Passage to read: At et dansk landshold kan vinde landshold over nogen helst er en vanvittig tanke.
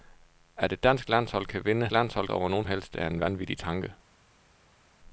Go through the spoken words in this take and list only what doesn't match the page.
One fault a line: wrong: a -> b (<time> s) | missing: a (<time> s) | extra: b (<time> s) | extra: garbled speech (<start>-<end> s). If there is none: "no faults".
no faults